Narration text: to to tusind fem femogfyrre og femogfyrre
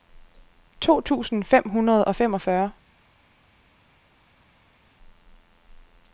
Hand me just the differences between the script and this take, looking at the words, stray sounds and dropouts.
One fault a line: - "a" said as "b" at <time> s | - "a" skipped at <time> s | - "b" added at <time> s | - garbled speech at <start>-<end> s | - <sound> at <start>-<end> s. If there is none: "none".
- "to" skipped at 1.0 s
- "femogfyrre" said as "hundrede" at 1.7 s